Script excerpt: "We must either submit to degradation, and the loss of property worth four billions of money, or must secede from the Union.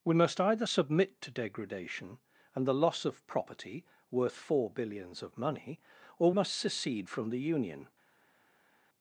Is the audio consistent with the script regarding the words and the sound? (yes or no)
yes